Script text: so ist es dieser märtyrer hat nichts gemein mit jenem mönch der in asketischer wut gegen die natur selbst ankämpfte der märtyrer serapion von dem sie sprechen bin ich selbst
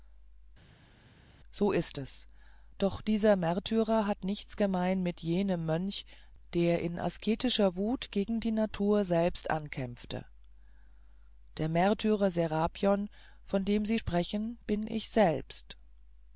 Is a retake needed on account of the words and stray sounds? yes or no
yes